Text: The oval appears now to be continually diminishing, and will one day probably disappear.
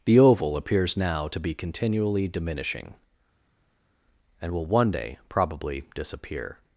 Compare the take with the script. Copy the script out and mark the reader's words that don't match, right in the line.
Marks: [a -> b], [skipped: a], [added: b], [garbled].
The oval appears now to be continually diminishing, and will one day probably disappear.